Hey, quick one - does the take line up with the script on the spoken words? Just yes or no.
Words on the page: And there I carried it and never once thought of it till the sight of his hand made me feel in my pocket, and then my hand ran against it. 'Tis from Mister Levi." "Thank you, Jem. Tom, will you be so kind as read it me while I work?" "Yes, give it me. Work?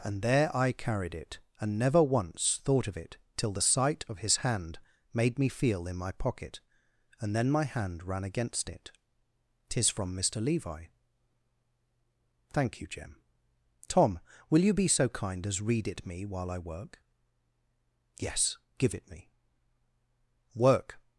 yes